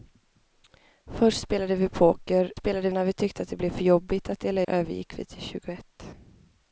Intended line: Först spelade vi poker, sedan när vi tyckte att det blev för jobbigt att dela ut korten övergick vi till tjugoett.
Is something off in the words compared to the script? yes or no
yes